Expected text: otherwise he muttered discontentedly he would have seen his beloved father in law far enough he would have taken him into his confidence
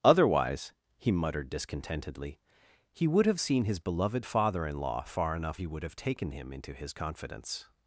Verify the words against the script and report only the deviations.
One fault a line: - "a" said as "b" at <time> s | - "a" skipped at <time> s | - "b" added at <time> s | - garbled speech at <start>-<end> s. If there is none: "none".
none